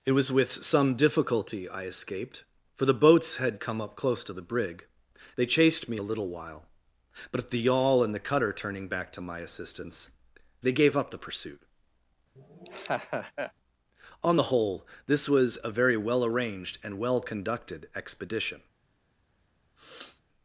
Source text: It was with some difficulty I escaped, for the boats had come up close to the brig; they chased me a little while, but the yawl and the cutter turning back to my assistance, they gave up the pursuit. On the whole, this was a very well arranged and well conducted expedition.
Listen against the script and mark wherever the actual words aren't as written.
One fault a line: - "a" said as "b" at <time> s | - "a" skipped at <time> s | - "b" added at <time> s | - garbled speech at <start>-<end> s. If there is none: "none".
- "at" added at 7.4 s